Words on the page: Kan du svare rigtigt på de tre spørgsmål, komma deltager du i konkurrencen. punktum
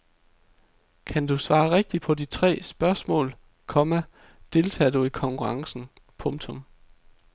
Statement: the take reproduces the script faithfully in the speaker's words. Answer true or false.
true